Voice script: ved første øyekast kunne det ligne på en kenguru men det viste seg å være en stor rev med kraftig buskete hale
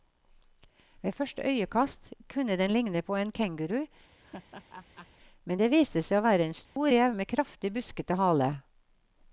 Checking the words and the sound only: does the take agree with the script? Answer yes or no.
no